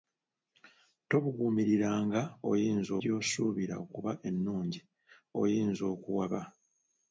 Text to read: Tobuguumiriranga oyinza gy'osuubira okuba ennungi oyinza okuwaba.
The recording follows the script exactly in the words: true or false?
true